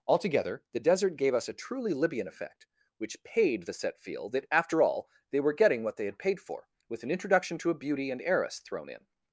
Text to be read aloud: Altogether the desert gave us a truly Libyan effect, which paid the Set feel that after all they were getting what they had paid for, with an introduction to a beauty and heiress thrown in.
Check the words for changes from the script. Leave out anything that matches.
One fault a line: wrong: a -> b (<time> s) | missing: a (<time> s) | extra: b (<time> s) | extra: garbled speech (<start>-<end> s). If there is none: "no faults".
no faults